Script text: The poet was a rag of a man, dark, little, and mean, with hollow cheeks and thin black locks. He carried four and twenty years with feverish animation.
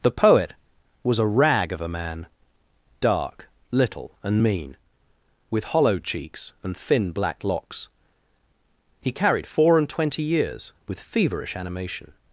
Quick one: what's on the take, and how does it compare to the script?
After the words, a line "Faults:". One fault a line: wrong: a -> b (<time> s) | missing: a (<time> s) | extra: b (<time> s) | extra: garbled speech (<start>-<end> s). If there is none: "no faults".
The poet was a rag of a man, dark, little, and mean, with hollow cheeks and thin black locks. He carried four and twenty years with feverish animation.
Faults:
no faults